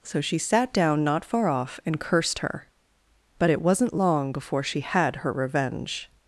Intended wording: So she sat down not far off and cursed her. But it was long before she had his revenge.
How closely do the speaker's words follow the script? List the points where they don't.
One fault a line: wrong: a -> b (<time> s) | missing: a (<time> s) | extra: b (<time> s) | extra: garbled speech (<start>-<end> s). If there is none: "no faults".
wrong: was -> wasn't (3.6 s)
wrong: his -> her (5.2 s)